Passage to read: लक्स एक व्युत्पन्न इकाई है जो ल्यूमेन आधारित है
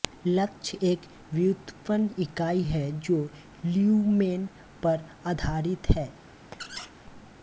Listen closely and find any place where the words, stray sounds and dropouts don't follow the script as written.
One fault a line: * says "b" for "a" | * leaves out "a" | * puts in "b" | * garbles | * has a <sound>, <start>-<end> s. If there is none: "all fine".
* puts in "पर"
* has a squeak, 6.5-6.9 s